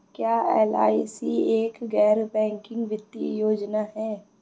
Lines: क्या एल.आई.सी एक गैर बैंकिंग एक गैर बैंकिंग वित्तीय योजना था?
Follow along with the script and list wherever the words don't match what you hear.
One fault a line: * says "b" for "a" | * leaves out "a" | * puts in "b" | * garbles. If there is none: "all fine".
* leaves out "एक गैर बैंकिंग"
* says "है" for "था"